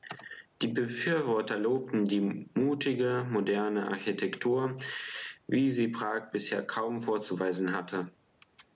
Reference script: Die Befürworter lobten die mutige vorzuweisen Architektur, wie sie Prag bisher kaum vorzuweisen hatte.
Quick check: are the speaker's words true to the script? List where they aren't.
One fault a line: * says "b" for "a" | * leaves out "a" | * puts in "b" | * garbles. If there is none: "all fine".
* says "moderne" for "vorzuweisen"